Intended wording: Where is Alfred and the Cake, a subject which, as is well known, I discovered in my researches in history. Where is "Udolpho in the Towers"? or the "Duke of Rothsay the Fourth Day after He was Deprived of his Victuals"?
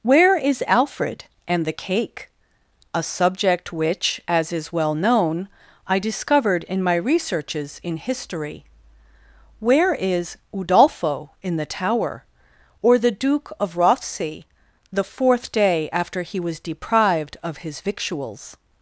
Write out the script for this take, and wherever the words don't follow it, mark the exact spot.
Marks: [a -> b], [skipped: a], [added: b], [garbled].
Where is Alfred and the Cake, a subject which, as is well known, I discovered in my researches in history. Where is "Udolpho in the [Towers"? -> Tower] or the "Duke of Rothsay the Fourth Day after He was Deprived of his Victuals"?